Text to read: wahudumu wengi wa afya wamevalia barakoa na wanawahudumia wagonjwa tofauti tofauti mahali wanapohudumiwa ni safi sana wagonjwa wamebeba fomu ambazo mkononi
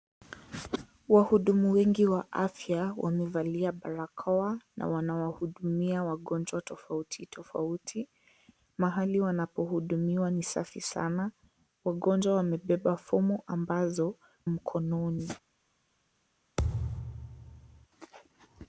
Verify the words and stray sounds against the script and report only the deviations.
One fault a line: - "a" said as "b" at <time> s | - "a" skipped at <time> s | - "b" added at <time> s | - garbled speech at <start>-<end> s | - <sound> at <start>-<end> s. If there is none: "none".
- thud at 16.6-17.9 s